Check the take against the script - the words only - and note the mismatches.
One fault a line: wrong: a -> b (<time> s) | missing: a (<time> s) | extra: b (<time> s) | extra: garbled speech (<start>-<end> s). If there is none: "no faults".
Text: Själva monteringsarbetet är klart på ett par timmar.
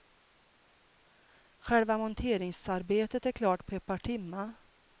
no faults